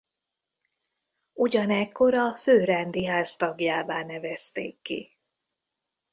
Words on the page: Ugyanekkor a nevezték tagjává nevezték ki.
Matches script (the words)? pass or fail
fail